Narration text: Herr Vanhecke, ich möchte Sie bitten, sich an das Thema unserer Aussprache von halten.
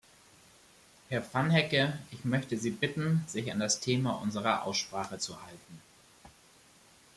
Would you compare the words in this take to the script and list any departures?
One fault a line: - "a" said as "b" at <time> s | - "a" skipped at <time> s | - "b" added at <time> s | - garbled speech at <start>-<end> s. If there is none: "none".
- "von" said as "zu" at 5.2 s